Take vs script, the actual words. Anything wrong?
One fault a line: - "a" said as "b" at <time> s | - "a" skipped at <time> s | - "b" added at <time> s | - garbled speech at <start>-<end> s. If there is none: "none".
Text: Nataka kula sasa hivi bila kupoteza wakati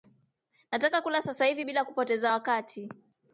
none